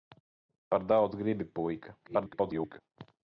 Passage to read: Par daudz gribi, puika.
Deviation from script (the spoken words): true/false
true